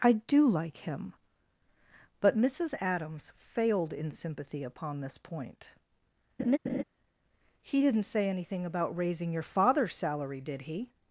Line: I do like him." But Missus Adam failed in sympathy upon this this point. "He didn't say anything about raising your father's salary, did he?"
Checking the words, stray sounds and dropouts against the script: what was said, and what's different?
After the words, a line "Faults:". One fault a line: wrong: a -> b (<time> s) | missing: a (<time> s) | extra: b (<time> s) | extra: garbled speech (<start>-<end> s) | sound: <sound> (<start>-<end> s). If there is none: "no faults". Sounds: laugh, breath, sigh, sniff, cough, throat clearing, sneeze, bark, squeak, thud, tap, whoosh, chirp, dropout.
I do like him." But Missus Adams failed in sympathy upon this point. "He didn't say anything about raising your father's salary, did he?"
Faults:
wrong: Adam -> Adams (2.8 s)
missing: this (5.2 s)
sound: laugh (6.4-6.8 s)